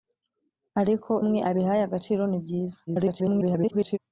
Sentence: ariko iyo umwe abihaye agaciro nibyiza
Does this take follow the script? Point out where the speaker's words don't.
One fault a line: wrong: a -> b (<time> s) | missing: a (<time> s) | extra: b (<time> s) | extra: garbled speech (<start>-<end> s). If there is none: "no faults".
missing: iyo (1.1 s)
extra: garbled speech (2.9-4.0 s)